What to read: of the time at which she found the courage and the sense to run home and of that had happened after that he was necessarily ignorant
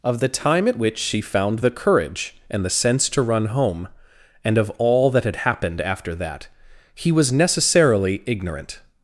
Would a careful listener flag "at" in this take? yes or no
no